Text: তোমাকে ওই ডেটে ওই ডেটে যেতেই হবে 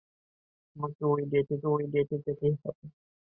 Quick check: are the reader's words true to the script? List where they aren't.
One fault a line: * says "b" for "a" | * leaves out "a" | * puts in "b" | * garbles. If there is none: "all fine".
all fine